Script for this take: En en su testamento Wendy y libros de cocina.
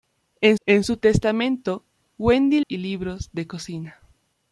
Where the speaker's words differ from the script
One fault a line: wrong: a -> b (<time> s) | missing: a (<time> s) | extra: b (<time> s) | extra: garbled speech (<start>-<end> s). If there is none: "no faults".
no faults